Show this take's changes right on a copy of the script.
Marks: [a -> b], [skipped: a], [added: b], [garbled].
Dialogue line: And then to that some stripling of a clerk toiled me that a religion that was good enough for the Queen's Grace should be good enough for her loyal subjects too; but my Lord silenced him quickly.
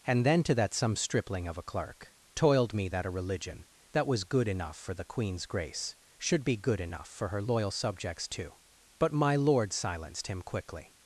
And then to that some stripling of a clerk toiled me that a religion that was good enough for the Queen's Grace should be good enough for her loyal subjects too; but my Lord silenced him quickly.